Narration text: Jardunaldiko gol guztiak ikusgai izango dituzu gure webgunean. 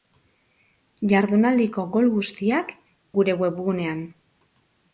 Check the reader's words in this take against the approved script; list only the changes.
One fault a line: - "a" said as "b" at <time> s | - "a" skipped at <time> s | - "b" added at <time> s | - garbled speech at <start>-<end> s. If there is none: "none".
- "ikusgai izango dituzu" skipped at 2.7 s